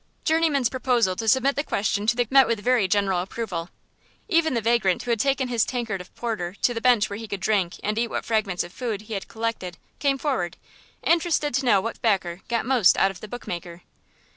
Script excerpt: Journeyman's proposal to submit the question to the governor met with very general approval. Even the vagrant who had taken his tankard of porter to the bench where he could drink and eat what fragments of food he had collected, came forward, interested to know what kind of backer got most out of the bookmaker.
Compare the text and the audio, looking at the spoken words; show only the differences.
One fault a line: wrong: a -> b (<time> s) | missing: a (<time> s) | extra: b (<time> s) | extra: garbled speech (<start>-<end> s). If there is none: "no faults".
missing: governor (2.2 s)
missing: kind (12.0 s)